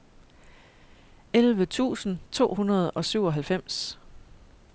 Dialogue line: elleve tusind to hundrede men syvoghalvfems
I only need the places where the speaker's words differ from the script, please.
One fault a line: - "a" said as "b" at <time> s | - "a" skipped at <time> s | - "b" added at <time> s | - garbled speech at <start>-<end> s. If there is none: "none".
- "men" said as "og" at 2.9 s